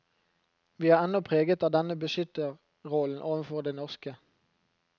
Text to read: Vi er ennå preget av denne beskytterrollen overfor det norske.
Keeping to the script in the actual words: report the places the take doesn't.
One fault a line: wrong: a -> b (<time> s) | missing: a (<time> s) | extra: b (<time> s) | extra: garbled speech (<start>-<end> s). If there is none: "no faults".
no faults